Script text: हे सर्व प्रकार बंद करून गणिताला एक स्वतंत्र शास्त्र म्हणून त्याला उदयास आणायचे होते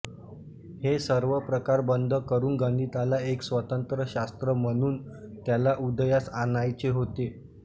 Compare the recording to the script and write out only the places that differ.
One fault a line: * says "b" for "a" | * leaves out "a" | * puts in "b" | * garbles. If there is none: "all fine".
all fine